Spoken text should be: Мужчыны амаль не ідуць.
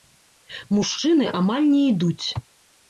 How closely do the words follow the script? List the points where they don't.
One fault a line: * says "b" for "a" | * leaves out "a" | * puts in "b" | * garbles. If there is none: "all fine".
all fine